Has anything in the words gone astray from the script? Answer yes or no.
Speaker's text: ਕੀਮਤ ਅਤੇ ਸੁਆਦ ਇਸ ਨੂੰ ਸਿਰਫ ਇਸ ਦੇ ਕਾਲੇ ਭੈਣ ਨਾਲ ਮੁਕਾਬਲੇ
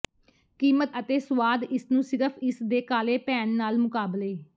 no